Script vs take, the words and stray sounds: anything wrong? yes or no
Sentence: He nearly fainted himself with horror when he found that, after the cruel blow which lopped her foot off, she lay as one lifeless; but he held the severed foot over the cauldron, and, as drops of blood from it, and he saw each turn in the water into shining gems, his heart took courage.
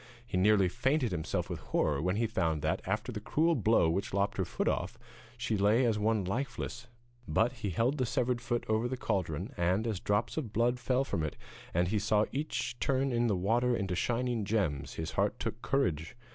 yes